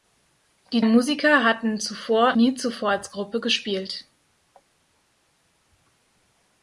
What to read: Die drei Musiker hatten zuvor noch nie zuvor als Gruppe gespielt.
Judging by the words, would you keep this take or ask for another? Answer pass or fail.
fail